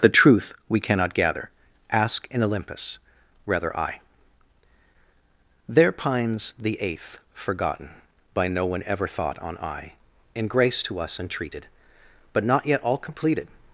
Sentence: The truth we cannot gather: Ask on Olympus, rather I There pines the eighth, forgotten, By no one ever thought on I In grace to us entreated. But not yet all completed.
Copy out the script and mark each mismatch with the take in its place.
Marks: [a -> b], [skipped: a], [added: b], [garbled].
The truth we cannot gather: Ask [on -> in] Olympus, rather I There pines the eighth, forgotten, By no one ever thought on I In grace to us entreated. But not yet all completed.